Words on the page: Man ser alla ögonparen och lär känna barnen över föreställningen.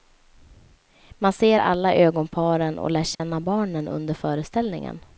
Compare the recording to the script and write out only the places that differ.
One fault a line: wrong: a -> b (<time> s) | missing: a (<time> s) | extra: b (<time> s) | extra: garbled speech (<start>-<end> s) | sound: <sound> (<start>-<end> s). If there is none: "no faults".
sound: dropout (3.1-3.2 s)
wrong: över -> under (3.9 s)